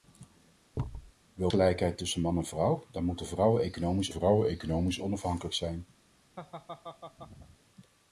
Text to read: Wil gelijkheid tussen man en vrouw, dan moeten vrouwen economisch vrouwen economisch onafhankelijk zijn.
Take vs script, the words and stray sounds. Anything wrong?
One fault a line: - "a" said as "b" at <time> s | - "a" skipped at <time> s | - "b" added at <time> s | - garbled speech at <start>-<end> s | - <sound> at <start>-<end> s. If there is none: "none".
- thud at 0.7-1.1 s
- laugh at 6.4-7.6 s